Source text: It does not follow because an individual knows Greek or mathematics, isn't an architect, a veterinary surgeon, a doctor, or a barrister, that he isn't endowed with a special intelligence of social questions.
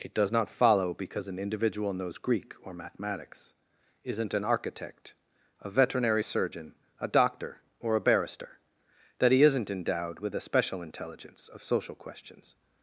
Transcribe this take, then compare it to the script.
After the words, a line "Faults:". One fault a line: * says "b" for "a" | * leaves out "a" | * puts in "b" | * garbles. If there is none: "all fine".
It does not follow because an individual knows Greek or mathematics, isn't an architect, a veterinary surgeon, a doctor, or a barrister, that he isn't endowed with a special intelligence of social questions.
Faults:
all fine